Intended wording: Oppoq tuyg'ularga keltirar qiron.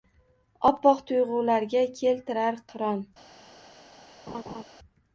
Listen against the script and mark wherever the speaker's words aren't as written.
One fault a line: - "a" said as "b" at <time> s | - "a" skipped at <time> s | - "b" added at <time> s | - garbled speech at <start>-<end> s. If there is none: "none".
none